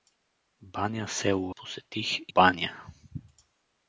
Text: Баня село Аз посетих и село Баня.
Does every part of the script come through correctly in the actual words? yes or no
no